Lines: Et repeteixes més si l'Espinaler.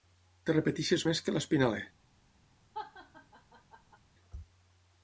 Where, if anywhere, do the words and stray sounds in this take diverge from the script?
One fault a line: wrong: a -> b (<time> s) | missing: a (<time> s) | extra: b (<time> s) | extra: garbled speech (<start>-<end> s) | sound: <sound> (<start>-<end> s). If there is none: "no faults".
wrong: si -> que (1.2 s)
sound: laugh (2.7-4.0 s)